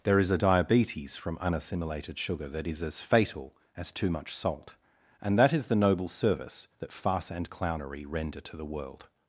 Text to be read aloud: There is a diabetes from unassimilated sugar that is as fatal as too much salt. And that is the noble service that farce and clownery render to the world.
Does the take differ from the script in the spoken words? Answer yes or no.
no